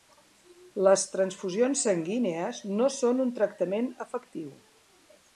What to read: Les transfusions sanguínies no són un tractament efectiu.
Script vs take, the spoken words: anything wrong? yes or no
no